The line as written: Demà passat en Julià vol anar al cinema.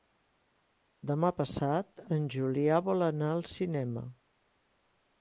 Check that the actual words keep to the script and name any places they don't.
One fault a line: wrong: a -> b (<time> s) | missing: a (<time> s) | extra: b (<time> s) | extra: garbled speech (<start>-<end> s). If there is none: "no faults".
no faults